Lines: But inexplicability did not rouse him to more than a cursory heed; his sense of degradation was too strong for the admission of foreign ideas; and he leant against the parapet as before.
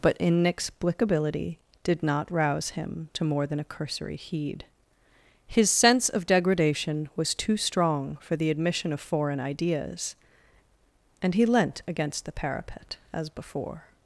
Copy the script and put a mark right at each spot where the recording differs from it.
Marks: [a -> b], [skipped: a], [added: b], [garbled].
But inexplicability did not rouse him to more than a cursory heed; his sense of degradation was too strong for the admission of foreign ideas; and he leant against the parapet as before.